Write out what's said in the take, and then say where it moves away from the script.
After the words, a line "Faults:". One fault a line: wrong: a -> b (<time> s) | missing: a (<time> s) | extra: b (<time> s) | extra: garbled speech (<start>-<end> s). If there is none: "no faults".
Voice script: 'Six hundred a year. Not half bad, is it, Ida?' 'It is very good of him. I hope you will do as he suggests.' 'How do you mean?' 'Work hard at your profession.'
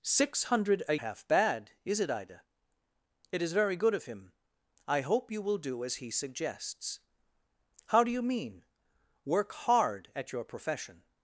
'Six hundred a half bad, is it, Ida?' 'It is very good of him. I hope you will do as he suggests.' 'How do you mean?' 'Work hard at your profession.'
Faults:
missing: year Not (0.9 s)